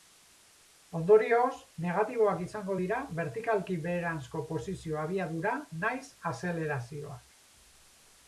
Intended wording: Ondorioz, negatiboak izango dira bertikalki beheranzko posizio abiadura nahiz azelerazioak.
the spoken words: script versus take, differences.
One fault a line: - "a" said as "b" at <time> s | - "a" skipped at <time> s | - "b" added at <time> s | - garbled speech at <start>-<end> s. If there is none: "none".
none